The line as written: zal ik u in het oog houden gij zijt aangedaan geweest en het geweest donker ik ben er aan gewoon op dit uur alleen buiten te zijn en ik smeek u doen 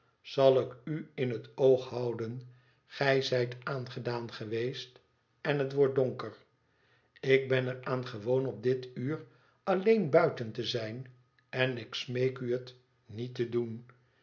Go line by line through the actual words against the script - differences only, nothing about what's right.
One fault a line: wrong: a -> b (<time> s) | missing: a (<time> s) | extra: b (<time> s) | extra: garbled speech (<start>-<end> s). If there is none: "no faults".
wrong: geweest -> wordt (5.7 s)
extra: het niet te (12.5 s)